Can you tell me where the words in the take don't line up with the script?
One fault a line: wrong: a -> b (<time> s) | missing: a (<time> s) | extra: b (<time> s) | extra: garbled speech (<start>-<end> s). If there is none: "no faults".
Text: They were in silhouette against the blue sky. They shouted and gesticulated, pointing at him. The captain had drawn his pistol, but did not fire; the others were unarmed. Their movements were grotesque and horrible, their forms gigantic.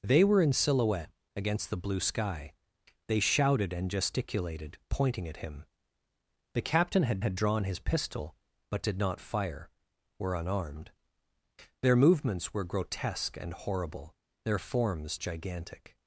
extra: had (7.2 s)
missing: the others (9.7 s)